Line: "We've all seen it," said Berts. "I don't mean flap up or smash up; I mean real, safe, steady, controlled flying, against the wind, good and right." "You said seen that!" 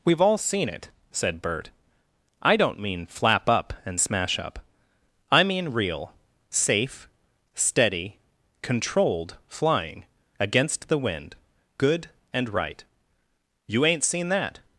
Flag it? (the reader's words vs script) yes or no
yes